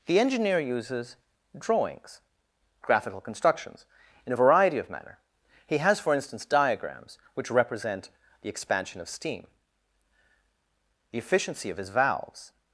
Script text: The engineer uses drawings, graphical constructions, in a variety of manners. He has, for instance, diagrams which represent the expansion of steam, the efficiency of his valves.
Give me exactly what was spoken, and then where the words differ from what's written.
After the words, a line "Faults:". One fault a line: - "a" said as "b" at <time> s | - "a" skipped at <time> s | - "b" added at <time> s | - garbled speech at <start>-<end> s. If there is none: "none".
The engineer uses drawings, graphical constructions, in a variety of manner. He has, for instance, diagrams which represent the expansion of steam, the efficiency of his valves.
Faults:
- "manners" said as "manner" at 4.9 s